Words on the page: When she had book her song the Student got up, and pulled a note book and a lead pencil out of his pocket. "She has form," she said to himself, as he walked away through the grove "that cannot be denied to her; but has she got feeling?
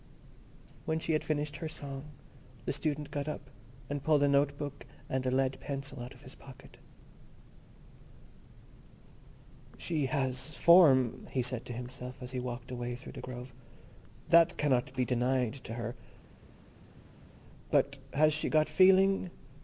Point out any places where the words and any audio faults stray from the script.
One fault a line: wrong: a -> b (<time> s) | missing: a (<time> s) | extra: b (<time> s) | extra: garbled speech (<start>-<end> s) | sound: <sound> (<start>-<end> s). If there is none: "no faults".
wrong: book -> finished (1.2 s)
wrong: she -> he (11.3 s)